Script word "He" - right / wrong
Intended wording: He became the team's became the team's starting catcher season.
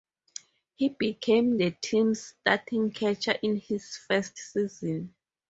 right